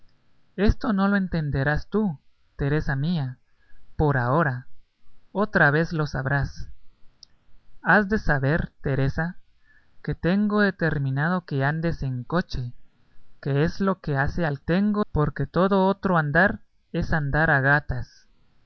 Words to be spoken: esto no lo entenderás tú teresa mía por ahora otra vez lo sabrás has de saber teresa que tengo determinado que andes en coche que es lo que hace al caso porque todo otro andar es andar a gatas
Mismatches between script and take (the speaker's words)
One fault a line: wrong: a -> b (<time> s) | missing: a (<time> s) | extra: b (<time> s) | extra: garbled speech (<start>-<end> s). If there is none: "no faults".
wrong: caso -> tengo (14.6 s)